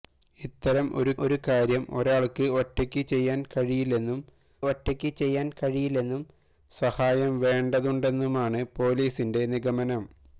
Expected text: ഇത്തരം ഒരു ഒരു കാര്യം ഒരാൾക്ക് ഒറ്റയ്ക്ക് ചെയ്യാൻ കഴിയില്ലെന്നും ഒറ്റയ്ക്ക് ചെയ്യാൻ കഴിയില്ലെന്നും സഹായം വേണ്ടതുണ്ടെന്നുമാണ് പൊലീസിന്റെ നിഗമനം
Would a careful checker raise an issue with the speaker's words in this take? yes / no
no